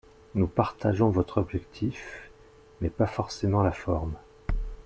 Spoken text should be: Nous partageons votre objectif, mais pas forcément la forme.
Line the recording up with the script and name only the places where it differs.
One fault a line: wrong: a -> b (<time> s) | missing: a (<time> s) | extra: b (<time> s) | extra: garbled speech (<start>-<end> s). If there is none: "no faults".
no faults